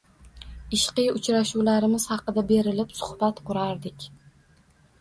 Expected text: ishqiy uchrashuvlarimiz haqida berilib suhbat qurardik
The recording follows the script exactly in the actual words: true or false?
true